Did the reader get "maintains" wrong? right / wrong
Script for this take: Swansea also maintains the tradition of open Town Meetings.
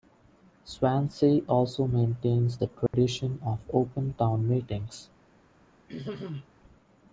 right